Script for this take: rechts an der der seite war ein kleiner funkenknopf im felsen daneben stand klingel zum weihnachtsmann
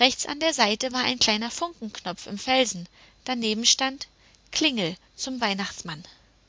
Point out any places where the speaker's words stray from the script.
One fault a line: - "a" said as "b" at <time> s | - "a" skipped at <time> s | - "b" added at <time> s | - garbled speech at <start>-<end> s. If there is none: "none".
- "der" skipped at 0.5 s